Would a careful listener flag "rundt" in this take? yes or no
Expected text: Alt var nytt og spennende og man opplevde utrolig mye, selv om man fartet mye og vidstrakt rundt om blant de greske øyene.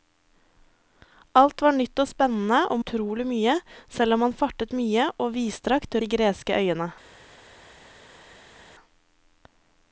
yes